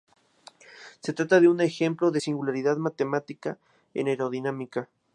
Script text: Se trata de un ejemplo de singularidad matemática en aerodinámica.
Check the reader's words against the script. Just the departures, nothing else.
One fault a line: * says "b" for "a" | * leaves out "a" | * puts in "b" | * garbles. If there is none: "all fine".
all fine